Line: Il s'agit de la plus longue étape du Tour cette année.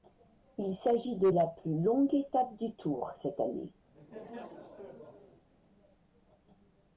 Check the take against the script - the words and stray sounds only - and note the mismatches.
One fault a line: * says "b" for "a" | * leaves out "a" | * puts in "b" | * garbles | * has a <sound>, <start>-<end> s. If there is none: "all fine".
* has a laugh, 3.9-5.5 s